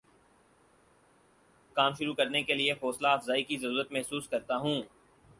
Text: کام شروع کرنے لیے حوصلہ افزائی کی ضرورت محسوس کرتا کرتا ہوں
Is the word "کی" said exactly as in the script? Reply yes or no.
yes